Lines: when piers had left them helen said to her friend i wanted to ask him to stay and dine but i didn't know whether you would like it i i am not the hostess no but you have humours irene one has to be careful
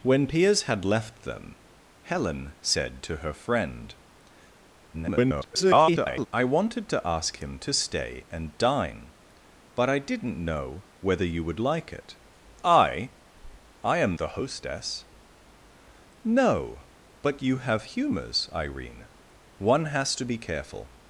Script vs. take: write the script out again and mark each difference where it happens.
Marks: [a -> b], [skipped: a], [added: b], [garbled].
when piers had left them helen said to her friend [garbled] i wanted to ask him to stay and dine but i didn't know whether you would like it i i am [skipped: not] the hostess no but you have humours irene one has to be careful